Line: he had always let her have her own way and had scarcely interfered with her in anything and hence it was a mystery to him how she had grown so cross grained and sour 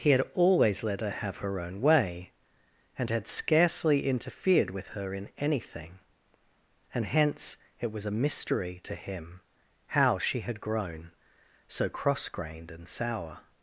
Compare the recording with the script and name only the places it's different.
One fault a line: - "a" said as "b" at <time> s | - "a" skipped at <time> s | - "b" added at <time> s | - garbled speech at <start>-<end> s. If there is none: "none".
none